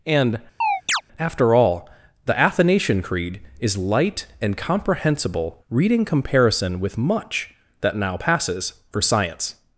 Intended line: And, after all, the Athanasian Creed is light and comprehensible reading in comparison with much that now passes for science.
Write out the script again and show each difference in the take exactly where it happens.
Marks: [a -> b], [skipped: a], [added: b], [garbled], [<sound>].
And, [chirp] after all, the Athanasian Creed is light and comprehensible reading [skipped: in] comparison with much that now passes for science.